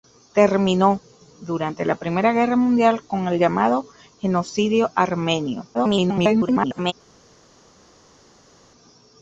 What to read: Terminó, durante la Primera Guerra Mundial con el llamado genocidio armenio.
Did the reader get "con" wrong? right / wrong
right